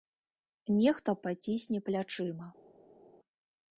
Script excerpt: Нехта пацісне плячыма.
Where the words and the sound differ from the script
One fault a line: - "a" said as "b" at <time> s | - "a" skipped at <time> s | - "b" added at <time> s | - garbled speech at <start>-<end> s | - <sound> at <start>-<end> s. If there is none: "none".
none